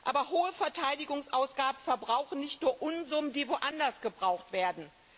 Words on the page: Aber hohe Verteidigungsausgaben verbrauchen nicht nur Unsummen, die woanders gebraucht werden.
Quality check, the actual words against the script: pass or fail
pass